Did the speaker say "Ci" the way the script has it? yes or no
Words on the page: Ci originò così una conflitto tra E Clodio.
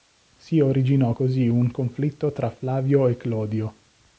no